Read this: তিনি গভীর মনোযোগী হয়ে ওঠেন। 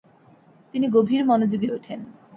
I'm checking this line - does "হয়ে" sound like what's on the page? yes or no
no